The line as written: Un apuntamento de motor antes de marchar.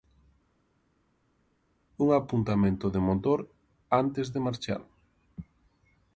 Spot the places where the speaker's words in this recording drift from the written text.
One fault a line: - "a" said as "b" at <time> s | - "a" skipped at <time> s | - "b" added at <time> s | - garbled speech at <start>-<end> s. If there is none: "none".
none